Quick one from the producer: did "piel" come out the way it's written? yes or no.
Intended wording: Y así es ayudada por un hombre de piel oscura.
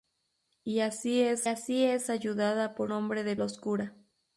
no